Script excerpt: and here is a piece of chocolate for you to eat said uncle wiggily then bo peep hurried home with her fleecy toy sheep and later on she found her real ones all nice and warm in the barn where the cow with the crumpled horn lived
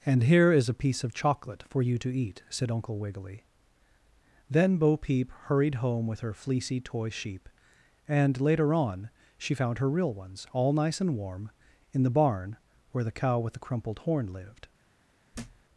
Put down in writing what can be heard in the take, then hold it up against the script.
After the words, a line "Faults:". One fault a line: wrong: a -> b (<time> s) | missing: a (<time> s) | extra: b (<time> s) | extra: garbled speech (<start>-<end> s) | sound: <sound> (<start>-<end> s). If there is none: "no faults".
and here is a piece of chocolate for you to eat said uncle wiggily then bo peep hurried home with her fleecy toy sheep and later on she found her real ones all nice and warm in the barn where the cow with the crumpled horn lived
Faults:
sound: thud (15.3-15.6 s)